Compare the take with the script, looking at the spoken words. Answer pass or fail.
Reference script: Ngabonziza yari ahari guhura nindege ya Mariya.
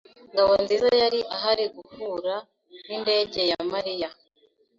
pass